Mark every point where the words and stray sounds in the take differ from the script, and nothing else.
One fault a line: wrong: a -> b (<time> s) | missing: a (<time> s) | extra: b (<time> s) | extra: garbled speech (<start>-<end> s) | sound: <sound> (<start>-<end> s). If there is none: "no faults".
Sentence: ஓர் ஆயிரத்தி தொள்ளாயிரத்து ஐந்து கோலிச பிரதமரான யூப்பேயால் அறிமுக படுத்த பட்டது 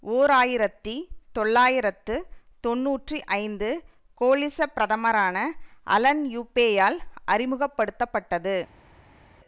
extra: தொன்னூற்றி (2.6 s)
extra: அலன் (5.9 s)